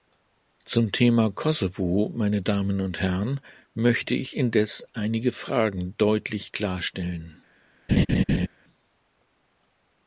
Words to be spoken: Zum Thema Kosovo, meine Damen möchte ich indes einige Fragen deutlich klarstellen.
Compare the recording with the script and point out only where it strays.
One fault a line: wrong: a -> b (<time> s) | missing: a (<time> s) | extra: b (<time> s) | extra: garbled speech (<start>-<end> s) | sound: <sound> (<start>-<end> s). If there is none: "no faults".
extra: und Herren (2.8 s)
sound: laugh (7.9-8.5 s)